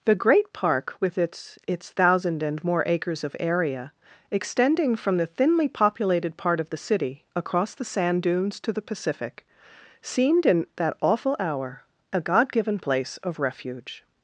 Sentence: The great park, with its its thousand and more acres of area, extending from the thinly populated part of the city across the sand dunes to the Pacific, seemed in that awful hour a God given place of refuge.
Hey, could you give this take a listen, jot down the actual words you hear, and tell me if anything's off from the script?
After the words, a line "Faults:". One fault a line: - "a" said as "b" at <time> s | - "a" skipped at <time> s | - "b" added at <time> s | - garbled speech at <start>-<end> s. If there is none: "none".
The great park, with its its thousand and more acres of area, extending from the thinly populated part of the city across the sand dunes to the Pacific, seemed in that awful hour a God given place of refuge.
Faults:
none